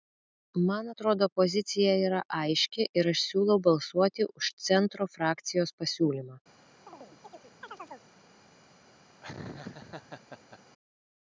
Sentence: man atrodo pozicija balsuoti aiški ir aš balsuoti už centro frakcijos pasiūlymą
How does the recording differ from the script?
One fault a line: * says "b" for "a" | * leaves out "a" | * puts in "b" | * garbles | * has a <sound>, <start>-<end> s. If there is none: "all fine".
* says "yra" for "balsuoti"
* puts in "siūlau"
* has a chirp, 6.9-8.1 s
* has a laugh, 9.2-10.6 s